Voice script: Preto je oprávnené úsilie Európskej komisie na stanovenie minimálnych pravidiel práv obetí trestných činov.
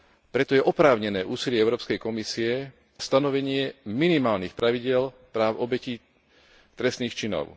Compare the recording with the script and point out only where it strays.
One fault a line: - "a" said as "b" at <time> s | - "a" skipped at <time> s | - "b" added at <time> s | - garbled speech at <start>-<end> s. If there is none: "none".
- "na" skipped at 2.7 s